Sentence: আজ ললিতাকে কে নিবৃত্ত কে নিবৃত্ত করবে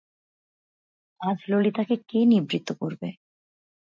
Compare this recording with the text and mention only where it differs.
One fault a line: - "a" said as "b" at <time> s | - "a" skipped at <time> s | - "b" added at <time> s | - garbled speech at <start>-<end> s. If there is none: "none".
- "কে নিবৃত্ত" skipped at 2.7 s